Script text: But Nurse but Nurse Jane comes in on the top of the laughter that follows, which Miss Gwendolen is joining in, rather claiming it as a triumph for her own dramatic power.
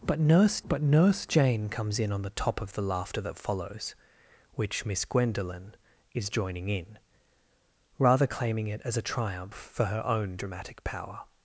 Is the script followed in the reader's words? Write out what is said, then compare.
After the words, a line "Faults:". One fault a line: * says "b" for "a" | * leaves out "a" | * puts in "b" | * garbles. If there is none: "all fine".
But Nurse but Nurse Jane comes in on the top of the laughter that follows, which Miss Gwendolen is joining in, rather claiming it as a triumph for her own dramatic power.
Faults:
all fine